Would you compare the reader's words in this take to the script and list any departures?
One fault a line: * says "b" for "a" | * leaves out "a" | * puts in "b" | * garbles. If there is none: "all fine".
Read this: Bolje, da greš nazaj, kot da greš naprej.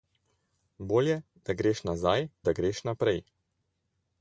* leaves out "kot"